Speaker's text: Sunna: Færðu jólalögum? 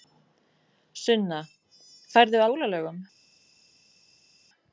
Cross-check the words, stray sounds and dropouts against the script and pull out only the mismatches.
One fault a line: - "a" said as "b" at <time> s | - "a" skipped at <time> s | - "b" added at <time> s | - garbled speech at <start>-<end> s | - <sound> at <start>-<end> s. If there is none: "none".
none